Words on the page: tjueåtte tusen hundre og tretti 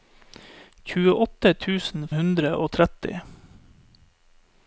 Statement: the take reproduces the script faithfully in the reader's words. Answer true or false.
true